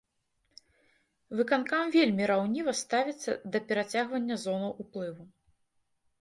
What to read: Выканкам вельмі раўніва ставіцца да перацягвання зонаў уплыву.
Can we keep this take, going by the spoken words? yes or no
yes